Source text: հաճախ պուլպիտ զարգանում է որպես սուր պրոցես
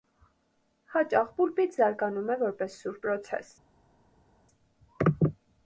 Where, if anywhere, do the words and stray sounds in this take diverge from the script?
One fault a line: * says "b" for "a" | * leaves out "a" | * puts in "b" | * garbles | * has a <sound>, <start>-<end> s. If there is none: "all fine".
all fine